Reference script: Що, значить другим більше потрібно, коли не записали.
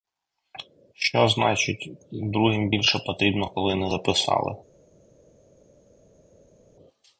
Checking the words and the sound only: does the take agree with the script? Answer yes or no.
yes